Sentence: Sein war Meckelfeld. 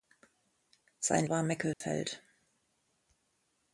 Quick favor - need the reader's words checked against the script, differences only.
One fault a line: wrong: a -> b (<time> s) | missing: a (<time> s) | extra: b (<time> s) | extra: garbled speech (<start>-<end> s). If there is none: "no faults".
no faults